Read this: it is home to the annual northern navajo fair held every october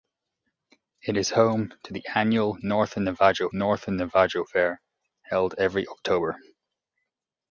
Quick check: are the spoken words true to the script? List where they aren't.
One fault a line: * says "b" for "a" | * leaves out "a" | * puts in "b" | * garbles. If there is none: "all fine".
* puts in "northern navajo"